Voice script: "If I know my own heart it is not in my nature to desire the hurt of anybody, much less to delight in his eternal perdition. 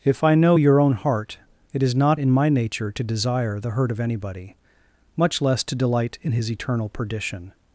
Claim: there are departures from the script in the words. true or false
true